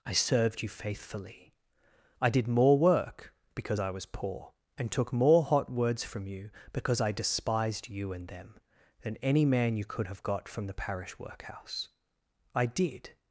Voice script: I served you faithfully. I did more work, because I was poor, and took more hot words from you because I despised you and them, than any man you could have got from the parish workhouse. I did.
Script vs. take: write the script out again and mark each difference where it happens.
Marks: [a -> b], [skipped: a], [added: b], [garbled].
I served you faithfully. I did more work, because I was poor, and took more hot words from you because I despised you and them, than any man you could have got from the parish workhouse. I did.